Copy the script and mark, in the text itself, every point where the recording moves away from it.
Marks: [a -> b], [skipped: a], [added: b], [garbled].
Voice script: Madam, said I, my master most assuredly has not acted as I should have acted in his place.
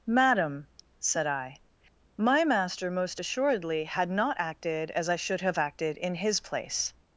Madam, said I, my master most assuredly [has -> had] not acted as I should have acted in his place.